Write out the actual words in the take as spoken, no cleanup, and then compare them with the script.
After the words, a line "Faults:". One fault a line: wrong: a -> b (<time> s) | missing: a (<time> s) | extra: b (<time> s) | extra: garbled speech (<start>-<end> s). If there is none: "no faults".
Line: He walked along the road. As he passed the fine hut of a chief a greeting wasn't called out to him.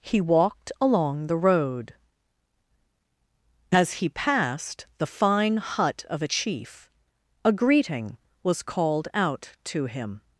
He walked along the road. As he passed the fine hut of a chief a greeting was called out to him.
Faults:
wrong: wasn't -> was (8.4 s)